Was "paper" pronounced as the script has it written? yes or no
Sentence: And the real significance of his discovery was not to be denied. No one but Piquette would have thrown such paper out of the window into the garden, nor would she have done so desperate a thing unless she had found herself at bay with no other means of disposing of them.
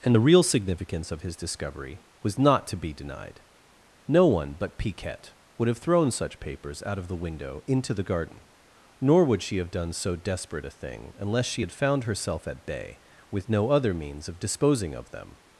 no